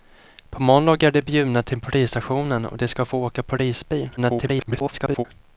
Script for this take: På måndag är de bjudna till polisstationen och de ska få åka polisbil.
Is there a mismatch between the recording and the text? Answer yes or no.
yes